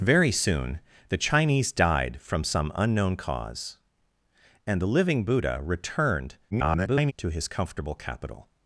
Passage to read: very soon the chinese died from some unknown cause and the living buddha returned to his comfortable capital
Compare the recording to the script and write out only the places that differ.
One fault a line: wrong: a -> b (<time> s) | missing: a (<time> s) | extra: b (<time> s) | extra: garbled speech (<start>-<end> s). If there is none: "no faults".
extra: garbled speech (6.5-7.1 s)